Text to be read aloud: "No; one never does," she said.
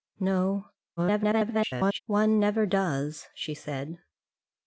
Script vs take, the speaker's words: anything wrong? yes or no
yes